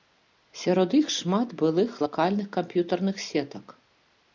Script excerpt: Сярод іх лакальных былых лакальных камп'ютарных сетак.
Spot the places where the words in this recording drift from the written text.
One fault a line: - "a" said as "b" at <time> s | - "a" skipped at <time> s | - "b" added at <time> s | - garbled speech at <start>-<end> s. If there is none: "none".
- "лакальных" said as "шмат" at 1.2 s